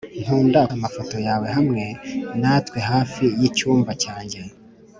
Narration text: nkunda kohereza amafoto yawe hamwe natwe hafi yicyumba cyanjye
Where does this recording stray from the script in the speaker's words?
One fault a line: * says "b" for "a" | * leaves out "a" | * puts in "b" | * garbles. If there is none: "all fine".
* leaves out "kohereza"